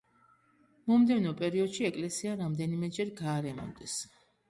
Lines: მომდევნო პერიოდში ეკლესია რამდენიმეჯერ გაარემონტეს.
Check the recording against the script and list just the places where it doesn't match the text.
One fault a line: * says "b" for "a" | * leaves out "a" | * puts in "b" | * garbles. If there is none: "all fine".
all fine